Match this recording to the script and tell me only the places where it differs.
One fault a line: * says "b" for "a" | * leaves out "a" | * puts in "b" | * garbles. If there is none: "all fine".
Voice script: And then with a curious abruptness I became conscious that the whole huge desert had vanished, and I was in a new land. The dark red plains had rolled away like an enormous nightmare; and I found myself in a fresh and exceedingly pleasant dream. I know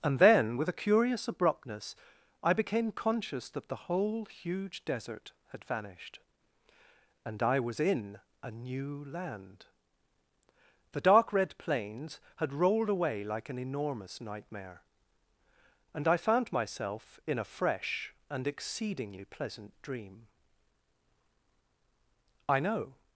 all fine